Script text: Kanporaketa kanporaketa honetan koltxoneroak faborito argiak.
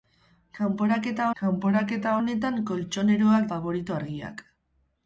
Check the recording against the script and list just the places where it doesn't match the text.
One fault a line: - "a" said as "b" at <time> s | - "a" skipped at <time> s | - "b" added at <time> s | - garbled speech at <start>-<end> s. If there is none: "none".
none